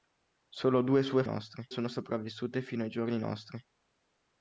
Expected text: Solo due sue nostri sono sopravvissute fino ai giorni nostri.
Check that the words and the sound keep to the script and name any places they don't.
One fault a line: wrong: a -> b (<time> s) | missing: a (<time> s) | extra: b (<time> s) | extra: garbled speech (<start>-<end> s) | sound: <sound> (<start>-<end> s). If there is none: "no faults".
no faults